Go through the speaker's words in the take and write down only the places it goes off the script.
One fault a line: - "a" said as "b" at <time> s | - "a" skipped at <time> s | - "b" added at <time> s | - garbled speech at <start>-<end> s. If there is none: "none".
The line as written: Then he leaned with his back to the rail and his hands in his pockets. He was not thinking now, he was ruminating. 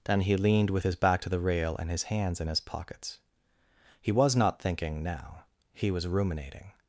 none